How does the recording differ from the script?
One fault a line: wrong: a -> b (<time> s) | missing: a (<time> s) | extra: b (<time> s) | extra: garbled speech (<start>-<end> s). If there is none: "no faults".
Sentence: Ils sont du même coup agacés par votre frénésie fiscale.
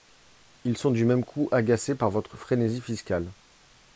no faults